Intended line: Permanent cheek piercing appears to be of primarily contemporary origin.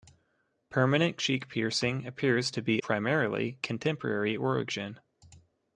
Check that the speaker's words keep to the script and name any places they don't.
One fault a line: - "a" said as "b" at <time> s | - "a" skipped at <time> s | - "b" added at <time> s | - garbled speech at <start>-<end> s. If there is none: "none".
- "of" skipped at 2.8 s